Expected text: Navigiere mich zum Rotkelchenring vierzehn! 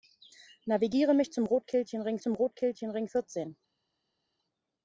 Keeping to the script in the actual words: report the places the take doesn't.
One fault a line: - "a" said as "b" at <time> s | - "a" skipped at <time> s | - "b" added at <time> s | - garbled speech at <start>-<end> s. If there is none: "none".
- "zum Rotkelchenring" added at 2.2 s